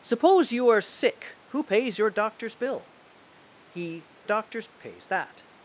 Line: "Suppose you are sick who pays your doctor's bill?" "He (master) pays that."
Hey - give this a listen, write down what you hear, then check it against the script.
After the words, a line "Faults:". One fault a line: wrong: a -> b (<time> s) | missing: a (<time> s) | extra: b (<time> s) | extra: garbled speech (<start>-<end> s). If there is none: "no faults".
"Suppose you are sick who pays your doctor's bill?" "He (doctor's) pays that."
Faults:
wrong: master -> doctor's (4.2 s)